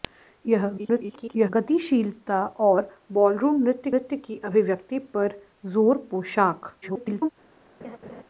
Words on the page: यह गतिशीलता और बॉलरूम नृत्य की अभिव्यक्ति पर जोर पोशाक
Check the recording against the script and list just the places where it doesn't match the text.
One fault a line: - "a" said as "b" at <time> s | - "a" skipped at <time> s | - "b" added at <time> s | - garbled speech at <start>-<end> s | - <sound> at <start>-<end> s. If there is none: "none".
- garbled speech at 0.8-1.5 s
- "नृत्य" added at 3.9 s
- garbled speech at 6.8-7.3 s
- laugh at 7.8-8.2 s